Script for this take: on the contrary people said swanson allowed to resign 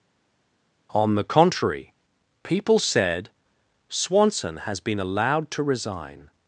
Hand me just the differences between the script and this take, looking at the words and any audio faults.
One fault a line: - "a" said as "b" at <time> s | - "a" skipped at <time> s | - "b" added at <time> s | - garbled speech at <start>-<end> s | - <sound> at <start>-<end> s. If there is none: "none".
- "has been" added at 4.6 s